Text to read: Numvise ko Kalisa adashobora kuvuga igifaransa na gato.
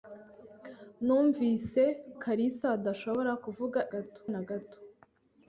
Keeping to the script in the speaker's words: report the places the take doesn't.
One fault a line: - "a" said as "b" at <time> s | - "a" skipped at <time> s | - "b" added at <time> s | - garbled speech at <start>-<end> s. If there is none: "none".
- "ko" skipped at 1.8 s
- "igifaransa" said as "gato" at 3.9 s